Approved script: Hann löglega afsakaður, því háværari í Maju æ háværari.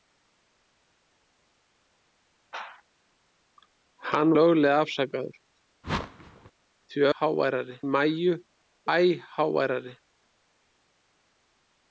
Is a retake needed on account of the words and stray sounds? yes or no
yes